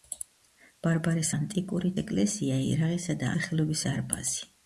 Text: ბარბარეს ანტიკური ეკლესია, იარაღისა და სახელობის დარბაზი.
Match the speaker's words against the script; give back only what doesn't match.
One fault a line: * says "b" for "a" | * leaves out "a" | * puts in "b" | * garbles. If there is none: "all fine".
all fine